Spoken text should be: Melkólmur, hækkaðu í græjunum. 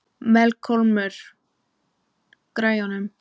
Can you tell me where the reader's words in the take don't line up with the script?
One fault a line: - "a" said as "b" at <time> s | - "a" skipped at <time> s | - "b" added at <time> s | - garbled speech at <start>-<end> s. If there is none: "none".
- "hækkaðu" skipped at 1.2 s